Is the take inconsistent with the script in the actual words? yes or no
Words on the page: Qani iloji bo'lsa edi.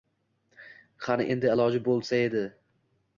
yes